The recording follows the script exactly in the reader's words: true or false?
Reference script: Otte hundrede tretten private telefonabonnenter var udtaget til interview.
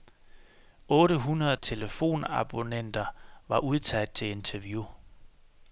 false